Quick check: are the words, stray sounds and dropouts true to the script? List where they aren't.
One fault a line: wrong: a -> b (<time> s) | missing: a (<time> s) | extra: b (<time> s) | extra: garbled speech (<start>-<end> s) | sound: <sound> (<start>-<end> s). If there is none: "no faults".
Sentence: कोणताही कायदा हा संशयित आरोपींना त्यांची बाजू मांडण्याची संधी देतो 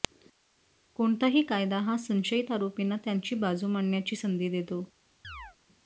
sound: chirp (5.2-5.6 s)